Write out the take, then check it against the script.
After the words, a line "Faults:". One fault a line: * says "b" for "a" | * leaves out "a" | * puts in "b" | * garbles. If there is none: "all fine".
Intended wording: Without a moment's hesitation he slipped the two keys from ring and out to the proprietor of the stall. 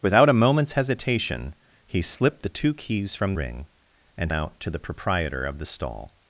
Without a moment's hesitation he slipped the two keys from ring and out to the proprietor of the stall.
Faults:
all fine